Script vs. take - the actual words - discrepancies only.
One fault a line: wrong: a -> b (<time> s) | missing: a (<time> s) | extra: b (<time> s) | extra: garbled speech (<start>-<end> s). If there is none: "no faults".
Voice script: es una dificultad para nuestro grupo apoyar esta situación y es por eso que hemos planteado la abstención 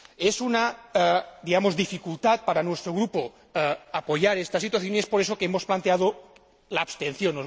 no faults